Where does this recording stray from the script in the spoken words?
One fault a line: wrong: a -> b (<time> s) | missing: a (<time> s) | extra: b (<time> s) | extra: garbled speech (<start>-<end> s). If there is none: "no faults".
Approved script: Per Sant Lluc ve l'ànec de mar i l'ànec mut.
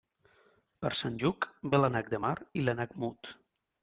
no faults